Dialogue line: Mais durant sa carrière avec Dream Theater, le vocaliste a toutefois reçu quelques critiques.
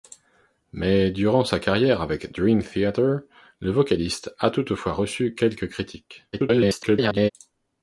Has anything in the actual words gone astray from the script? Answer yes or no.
yes